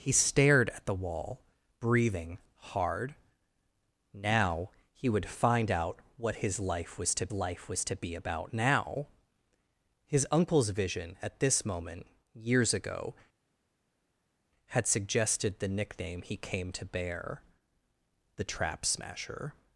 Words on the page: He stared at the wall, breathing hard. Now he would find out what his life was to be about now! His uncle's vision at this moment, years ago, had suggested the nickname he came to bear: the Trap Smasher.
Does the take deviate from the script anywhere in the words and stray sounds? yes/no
yes